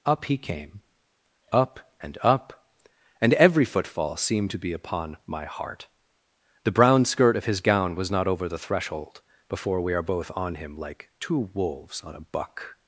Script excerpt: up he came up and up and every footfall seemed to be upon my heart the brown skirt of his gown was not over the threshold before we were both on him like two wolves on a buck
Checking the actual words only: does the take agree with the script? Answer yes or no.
no